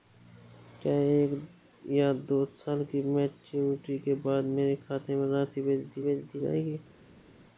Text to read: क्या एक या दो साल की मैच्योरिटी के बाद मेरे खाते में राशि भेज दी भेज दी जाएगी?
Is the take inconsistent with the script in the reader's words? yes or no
no